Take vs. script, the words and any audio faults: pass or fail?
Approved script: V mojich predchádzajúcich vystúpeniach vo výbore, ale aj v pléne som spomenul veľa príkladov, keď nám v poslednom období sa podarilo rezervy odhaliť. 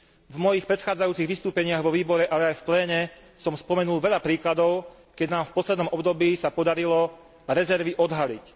pass